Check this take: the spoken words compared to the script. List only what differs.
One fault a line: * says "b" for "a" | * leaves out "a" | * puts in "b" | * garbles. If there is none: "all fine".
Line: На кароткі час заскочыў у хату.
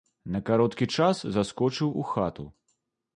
all fine